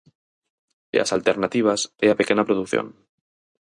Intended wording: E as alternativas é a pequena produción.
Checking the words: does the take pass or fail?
pass